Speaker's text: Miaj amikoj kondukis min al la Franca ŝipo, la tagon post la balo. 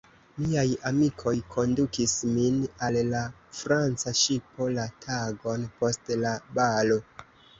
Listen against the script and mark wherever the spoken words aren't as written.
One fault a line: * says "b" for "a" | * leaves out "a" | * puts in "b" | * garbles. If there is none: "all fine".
all fine